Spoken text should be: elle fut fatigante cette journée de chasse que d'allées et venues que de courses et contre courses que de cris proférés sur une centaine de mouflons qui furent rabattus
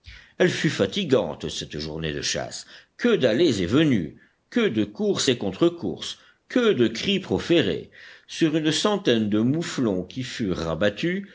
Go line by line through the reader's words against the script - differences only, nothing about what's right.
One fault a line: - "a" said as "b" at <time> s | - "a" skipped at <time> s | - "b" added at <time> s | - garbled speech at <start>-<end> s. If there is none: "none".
none